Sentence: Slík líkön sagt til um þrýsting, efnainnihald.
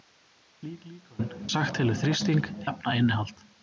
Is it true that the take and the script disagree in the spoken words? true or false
false